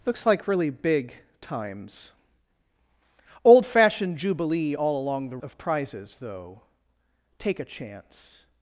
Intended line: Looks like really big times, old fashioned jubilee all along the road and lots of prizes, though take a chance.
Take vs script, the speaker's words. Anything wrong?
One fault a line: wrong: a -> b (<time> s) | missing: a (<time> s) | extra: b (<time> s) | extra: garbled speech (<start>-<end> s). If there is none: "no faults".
missing: road and lots (5.4 s)